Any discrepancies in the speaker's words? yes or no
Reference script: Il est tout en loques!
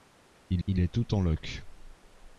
yes